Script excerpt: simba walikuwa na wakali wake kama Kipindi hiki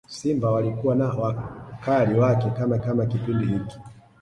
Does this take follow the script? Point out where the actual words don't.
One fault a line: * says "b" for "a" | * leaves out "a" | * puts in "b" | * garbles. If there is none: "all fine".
* puts in "kama"